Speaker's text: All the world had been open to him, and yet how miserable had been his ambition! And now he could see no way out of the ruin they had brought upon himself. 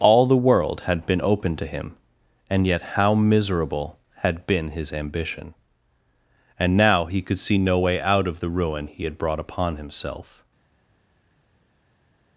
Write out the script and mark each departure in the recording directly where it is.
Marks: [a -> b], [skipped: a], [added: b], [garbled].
All the world had been open to him, and yet how miserable had been his ambition! And now he could see no way out of the ruin [they -> he] had brought upon himself.